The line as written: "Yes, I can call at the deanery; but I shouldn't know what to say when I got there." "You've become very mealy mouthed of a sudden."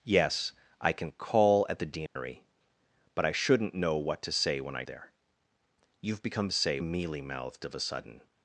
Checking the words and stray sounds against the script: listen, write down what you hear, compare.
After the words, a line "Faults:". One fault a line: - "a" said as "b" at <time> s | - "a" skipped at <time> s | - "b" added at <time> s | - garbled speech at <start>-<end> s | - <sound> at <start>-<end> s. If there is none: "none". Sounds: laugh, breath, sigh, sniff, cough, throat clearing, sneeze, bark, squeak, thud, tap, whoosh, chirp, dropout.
"Yes, I can call at the deanery; but I shouldn't know what to say when I there." "You've become say mealy mouthed of a sudden."
Faults:
- dropout at 2.1-2.2 s
- "got" skipped at 4.8 s
- "very" said as "say" at 6.5 s